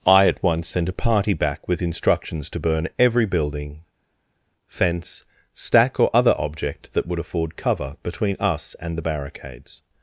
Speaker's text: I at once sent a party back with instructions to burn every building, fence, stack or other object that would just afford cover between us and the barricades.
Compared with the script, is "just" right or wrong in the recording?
wrong